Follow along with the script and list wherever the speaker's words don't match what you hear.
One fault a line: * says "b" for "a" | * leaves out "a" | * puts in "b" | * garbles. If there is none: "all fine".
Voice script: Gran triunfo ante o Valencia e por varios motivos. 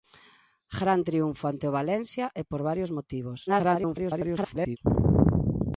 * garbles